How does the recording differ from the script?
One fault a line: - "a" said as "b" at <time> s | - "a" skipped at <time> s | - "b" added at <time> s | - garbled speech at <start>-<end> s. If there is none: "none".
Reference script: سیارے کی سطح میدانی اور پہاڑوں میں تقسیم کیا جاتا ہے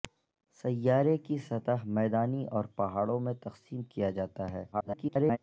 - garbled speech at 4.7-5.4 s